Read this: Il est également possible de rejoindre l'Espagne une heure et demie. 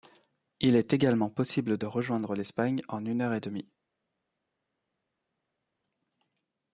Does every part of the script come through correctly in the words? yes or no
no